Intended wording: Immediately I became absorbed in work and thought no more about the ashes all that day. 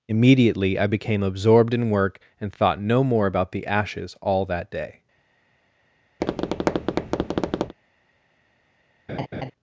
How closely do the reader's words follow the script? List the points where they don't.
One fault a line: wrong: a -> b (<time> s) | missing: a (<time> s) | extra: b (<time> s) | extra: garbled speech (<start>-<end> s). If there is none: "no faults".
no faults